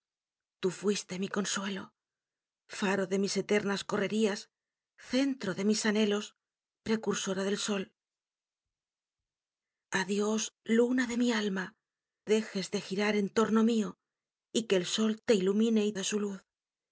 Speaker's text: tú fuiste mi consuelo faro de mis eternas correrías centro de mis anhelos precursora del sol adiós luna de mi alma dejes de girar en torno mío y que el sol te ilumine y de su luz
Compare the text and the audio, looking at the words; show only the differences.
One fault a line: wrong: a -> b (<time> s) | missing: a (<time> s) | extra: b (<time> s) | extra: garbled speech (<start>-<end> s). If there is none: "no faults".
no faults